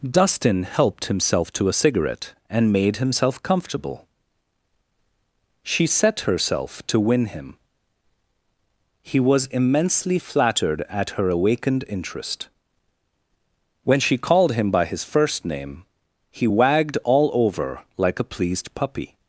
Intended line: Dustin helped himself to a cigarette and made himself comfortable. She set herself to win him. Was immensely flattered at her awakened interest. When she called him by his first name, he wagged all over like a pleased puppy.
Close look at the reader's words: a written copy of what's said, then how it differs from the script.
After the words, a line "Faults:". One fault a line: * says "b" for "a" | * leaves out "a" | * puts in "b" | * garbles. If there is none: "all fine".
Dustin helped himself to a cigarette and made himself comfortable. She set herself to win him. He was immensely flattered at her awakened interest. When she called him by his first name, he wagged all over like a pleased puppy.
Faults:
* puts in "He"